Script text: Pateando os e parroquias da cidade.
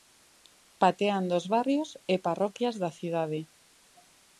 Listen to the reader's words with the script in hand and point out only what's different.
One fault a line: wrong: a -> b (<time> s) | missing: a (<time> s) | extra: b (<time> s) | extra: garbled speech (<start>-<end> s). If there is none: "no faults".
extra: barrios (1.5 s)